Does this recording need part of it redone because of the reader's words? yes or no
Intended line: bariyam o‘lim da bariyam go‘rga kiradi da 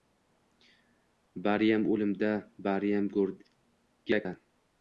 yes